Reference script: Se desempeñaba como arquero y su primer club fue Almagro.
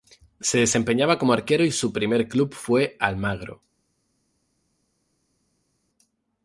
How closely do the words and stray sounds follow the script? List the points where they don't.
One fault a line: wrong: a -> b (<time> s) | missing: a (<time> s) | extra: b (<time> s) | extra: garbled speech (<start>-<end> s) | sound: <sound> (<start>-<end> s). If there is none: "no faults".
no faults